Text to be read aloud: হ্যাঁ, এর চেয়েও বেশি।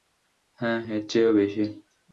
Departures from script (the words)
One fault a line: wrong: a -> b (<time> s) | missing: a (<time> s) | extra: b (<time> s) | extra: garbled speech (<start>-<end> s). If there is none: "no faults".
no faults